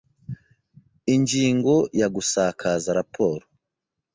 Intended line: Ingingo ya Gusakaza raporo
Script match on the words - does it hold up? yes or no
yes